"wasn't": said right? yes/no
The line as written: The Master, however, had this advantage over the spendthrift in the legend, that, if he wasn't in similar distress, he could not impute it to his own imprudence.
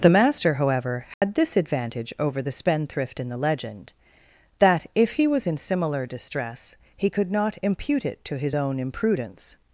no